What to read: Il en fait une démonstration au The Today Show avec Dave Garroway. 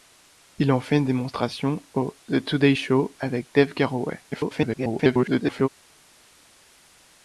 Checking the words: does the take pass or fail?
fail